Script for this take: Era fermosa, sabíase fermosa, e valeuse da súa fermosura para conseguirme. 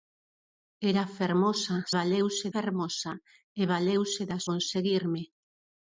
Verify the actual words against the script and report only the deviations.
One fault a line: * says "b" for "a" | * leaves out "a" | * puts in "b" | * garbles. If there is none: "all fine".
* says "valeuse" for "sabíase"
* leaves out "súa fermosura para"